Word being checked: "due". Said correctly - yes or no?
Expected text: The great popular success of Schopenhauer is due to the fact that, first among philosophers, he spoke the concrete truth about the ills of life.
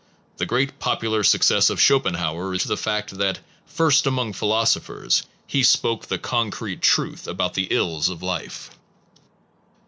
no